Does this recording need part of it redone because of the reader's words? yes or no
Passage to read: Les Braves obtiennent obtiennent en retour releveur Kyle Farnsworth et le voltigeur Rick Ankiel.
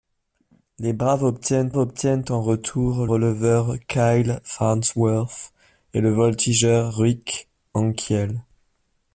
no